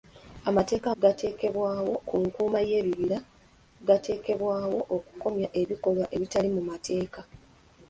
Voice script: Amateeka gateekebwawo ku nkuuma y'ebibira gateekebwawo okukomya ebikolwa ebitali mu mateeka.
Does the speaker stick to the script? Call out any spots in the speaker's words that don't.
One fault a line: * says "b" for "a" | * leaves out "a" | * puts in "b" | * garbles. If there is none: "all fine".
all fine